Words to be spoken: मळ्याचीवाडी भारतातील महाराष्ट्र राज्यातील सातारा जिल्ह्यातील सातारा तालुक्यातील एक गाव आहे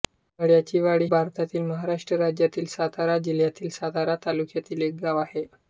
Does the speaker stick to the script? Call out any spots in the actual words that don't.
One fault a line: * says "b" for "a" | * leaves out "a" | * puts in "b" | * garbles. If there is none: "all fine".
all fine